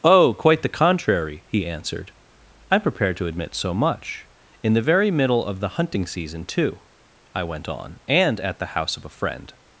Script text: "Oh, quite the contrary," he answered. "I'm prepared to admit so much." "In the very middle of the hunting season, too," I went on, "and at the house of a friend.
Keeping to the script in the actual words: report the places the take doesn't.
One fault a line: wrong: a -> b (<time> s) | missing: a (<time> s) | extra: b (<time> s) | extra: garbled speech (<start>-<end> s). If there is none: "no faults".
no faults